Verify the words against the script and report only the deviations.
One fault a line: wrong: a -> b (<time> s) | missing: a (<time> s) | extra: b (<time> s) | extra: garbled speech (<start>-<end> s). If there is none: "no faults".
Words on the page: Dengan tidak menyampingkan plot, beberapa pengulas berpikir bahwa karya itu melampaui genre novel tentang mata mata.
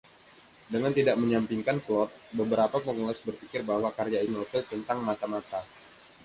missing: itu melampaui genre (4.2 s)